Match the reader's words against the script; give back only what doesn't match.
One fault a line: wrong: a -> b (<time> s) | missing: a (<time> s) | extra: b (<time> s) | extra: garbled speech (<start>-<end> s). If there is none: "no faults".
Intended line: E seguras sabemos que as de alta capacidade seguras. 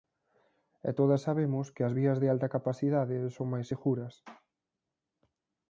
wrong: seguras -> todas (1.0 s)
extra: vías (2.0 s)
extra: son máis (3.4 s)